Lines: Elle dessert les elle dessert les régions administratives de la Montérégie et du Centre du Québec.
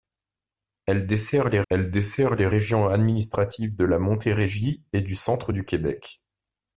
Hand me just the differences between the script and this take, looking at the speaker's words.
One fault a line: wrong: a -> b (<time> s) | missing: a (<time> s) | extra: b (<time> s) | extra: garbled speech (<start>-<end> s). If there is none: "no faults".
no faults